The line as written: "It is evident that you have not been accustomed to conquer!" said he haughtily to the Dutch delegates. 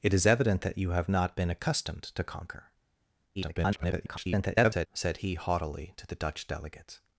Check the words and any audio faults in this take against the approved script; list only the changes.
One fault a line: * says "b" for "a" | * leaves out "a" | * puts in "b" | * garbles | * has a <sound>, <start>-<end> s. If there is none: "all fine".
* garbles